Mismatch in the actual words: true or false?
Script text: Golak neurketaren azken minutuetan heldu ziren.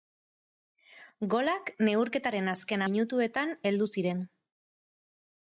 false